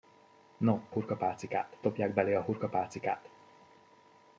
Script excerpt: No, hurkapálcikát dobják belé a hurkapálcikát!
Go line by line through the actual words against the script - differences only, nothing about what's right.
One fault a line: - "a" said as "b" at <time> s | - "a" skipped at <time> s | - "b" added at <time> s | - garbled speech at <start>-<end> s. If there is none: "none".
none